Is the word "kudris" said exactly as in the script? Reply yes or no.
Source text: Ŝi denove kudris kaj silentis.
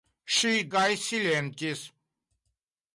no